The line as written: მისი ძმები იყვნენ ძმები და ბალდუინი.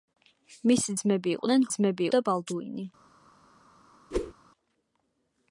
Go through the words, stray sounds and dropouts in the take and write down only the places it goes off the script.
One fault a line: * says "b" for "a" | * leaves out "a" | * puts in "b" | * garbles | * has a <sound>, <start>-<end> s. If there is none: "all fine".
* has a whoosh, 4.1-4.3 s